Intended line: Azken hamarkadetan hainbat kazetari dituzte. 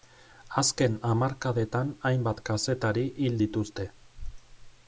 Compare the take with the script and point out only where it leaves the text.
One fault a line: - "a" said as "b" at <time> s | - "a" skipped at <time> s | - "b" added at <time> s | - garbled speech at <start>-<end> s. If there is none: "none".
- "hil" added at 3.2 s